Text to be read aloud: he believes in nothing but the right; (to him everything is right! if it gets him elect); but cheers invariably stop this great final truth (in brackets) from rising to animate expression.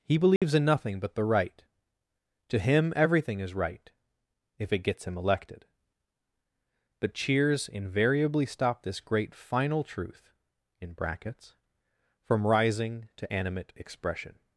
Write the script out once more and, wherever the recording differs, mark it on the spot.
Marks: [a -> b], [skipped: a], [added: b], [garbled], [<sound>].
he believes [dropout] in nothing but the right; (to him everything is right! if it gets him [elect); -> elected] but cheers invariably stop this great final truth (in brackets) from rising to animate expression.